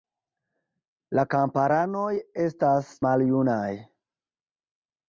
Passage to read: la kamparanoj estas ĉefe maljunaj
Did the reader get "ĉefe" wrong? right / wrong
wrong